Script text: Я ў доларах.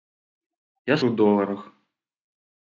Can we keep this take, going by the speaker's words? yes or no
yes